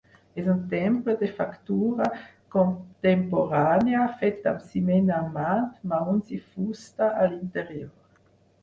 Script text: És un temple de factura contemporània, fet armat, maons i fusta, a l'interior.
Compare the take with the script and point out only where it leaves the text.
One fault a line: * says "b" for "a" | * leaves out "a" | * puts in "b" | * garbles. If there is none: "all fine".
* puts in "amb ciment"